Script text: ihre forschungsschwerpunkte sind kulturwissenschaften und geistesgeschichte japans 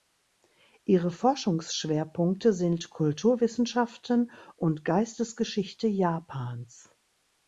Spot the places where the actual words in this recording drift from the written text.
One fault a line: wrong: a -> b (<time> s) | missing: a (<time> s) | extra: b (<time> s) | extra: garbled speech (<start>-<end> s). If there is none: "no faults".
no faults